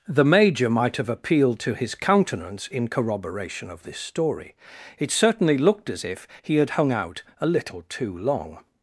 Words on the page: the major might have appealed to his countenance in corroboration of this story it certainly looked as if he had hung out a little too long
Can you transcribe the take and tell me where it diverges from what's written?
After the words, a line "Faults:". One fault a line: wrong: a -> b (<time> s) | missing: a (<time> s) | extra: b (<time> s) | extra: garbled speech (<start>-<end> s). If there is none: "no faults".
the major might have appealed to his countenance in corroboration of this story it certainly looked as if he had hung out a little too long
Faults:
no faults